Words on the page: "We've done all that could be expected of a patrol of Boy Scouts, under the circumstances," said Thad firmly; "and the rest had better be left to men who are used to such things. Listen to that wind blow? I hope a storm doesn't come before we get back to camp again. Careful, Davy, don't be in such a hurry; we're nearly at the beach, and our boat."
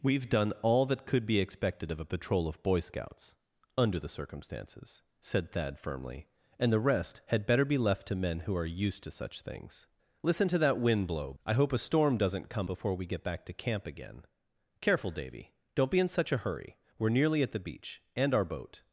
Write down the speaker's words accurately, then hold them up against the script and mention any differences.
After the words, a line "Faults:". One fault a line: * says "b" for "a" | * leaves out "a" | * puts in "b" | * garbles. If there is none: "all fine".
"We've done all that could be expected of a patrol of Boy Scouts, under the circumstances," said Thad firmly; "and the rest had better be left to men who are used to such things. Listen to that wind blow? I hope a storm doesn't come before we get back to camp again. Careful, Davy, don't be in such a hurry; we're nearly at the beach, and our boat."
Faults:
all fine